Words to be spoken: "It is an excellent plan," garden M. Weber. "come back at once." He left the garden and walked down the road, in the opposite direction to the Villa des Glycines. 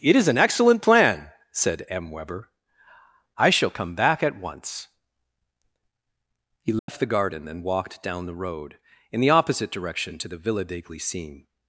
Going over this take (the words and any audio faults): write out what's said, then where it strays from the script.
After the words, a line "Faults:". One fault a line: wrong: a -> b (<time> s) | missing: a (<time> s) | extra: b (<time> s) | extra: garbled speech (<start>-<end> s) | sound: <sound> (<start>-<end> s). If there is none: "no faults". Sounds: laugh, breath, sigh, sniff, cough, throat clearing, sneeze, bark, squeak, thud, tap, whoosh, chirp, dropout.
"It is an excellent plan," said M. Weber. "I shall come back at once." He left the garden and walked down the road, in the opposite direction to the Villa des Glycines.
Faults:
wrong: garden -> said (1.5 s)
extra: I shall (3.4 s)
sound: dropout (6.8-6.9 s)